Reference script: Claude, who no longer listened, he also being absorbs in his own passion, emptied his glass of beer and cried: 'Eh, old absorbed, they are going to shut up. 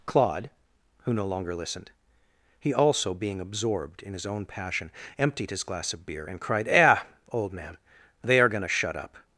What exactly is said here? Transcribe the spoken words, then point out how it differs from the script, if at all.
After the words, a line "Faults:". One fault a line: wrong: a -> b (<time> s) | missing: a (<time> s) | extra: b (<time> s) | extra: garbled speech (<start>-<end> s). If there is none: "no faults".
Claude, who no longer listened, he also being absorbed in his own passion, emptied his glass of beer and cried: 'Eh, old man, they are going to shut up.
Faults:
wrong: absorbs -> absorbed (3.4 s)
wrong: absorbed -> man (7.5 s)